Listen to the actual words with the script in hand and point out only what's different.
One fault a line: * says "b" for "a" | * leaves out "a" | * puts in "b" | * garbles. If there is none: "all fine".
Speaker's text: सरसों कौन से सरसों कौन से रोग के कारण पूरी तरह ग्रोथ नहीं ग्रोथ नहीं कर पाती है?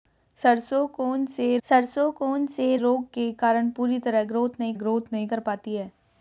all fine